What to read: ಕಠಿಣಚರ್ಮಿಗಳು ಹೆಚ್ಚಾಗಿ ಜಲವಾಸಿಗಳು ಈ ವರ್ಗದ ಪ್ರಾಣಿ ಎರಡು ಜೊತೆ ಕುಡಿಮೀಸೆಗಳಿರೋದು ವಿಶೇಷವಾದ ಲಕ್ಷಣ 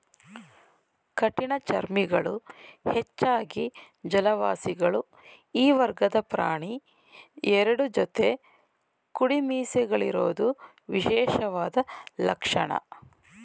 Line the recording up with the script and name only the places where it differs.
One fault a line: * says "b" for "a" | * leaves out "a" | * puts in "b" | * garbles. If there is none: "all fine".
all fine